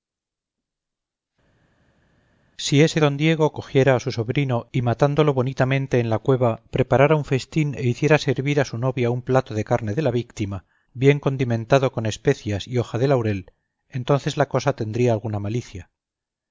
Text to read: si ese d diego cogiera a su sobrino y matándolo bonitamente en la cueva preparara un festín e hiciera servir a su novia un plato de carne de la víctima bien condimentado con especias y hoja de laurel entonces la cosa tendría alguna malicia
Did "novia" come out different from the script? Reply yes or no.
no